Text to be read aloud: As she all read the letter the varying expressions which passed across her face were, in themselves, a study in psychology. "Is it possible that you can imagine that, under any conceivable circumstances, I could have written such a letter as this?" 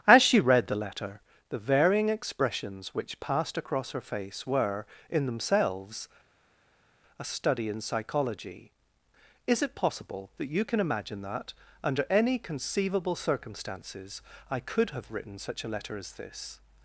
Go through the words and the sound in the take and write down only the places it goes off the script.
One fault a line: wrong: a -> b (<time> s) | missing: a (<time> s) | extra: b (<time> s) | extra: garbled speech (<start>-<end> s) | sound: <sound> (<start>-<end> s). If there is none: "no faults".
missing: all (0.4 s)